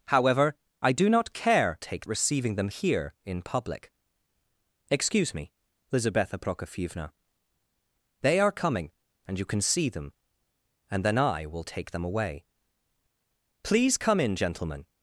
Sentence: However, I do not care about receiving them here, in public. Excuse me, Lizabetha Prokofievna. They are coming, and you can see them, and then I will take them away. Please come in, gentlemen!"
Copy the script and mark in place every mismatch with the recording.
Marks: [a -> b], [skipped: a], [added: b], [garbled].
However, I do not care [about -> take] receiving them here, in public. Excuse me, Lizabetha Prokofievna. They are coming, and you can see them, and then I will take them away. Please come in, gentlemen!"